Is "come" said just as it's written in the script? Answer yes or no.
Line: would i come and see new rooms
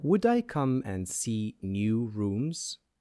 yes